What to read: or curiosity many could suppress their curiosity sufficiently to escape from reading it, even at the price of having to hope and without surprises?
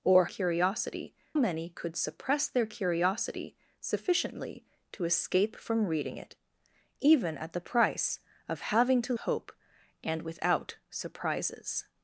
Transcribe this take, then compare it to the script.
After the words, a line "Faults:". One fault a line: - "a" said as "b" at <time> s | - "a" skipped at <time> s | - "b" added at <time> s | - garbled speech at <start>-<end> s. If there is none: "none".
or curiosity many could suppress their curiosity sufficiently to escape from reading it, even at the price of having to hope and without surprises?
Faults:
none